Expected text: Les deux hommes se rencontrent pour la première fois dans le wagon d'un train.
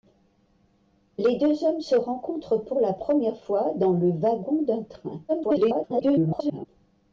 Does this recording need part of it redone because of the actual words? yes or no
yes